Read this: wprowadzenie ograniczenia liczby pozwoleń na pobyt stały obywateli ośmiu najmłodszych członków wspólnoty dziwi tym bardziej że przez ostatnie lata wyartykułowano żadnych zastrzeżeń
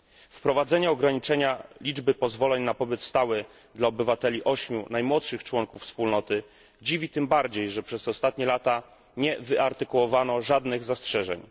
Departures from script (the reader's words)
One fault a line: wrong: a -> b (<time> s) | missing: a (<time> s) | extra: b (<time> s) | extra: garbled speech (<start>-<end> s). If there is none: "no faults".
extra: dla (3.8 s)
extra: nie (9.2 s)